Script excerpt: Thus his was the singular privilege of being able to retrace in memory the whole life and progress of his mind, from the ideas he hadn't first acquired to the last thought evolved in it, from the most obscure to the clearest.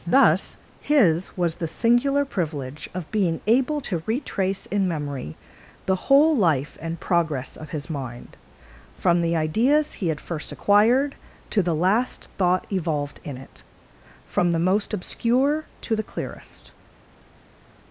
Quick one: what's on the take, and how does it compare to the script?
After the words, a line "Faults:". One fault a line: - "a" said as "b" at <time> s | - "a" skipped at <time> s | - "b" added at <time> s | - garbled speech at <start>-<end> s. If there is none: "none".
Thus his was the singular privilege of being able to retrace in memory the whole life and progress of his mind, from the ideas he had first acquired to the last thought evolved in it, from the most obscure to the clearest.
Faults:
- "hadn't" said as "had" at 10.1 s